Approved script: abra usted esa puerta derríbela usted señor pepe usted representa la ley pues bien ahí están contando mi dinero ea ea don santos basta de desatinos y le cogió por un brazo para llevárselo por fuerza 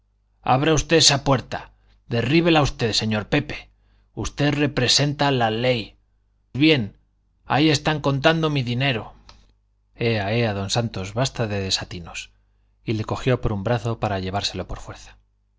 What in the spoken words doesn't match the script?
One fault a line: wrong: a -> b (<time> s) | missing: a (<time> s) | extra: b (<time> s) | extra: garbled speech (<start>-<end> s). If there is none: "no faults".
missing: pues (6.0 s)